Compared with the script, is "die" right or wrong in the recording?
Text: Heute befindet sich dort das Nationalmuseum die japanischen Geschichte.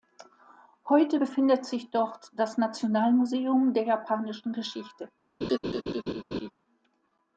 wrong